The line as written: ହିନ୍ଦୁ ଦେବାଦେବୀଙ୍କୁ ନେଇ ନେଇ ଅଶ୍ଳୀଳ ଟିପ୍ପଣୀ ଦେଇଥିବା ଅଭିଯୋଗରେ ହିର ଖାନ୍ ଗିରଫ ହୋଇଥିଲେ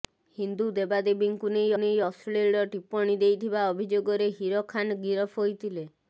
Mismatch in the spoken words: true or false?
false